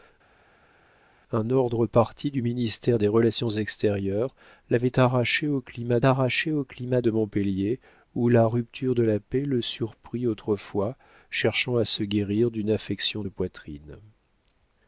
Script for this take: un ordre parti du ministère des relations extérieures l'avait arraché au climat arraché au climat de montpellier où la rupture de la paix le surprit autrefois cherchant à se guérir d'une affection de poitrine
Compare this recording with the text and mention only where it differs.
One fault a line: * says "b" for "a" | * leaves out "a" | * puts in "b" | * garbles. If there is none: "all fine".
all fine